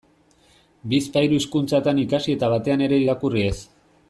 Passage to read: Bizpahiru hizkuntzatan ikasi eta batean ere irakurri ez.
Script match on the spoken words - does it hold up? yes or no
yes